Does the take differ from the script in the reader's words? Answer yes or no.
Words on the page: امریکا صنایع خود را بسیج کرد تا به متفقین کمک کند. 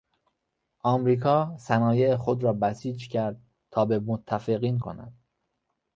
yes